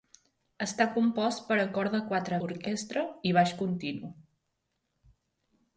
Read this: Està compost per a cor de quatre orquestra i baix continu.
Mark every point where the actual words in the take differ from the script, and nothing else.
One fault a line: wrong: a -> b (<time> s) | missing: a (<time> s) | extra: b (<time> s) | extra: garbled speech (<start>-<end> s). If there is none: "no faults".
no faults